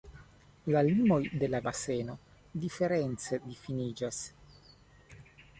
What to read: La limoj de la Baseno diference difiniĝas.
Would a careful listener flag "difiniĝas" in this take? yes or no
no